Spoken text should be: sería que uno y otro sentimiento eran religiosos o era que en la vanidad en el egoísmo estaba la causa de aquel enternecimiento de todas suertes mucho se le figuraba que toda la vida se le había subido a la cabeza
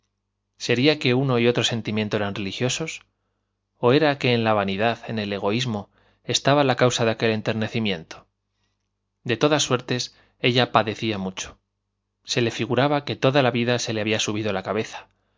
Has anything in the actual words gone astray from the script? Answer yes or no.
yes